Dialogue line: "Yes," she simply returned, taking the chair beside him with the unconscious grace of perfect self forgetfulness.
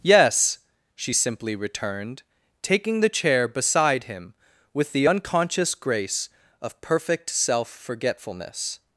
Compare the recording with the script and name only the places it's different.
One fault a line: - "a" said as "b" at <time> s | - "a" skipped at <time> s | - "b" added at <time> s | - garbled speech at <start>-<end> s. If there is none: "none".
none